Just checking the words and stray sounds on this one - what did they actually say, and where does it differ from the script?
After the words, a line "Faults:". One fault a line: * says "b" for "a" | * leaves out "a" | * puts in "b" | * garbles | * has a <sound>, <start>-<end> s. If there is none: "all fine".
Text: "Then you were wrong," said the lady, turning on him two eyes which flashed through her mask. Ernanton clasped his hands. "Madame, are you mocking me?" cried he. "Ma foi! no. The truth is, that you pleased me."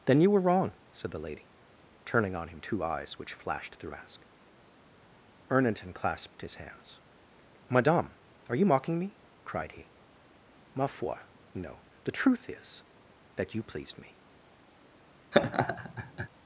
"Then you were wrong," said the lady, turning on him two eyes which flashed through mask. Ernanton clasped his hands. "Madame, are you mocking me?" cried he. "Ma foi! no. The truth is, that you pleased me."
Faults:
* leaves out "her"
* has a laugh, 15.3-16.3 s